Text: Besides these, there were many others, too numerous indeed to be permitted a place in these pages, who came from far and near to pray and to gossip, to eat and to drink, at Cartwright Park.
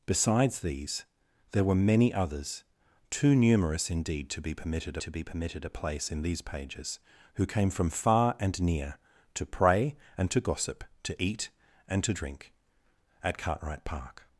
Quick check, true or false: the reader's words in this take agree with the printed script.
false